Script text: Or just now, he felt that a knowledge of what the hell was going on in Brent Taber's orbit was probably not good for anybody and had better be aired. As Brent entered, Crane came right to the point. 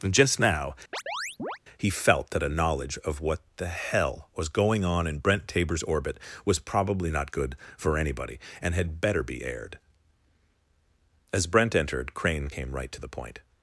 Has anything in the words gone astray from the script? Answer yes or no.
yes